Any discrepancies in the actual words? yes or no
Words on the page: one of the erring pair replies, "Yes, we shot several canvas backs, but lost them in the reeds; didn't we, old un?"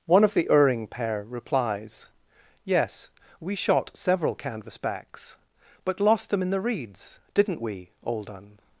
no